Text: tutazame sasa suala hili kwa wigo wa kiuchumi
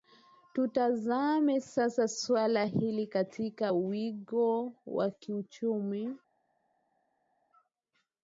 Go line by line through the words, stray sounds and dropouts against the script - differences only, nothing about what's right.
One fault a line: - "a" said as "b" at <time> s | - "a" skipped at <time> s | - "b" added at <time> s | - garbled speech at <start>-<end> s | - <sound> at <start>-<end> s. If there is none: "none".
- "kwa" said as "katika" at 3.1 s